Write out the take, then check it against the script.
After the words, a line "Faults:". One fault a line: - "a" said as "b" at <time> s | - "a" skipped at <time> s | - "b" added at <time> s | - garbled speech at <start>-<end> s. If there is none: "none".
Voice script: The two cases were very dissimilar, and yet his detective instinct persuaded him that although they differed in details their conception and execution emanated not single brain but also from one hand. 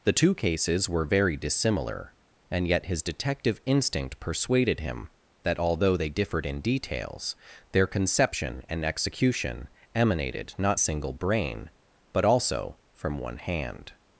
The two cases were very dissimilar, and yet his detective instinct persuaded him that although they differed in details their conception and execution emanated not single brain but also from one hand.
Faults:
none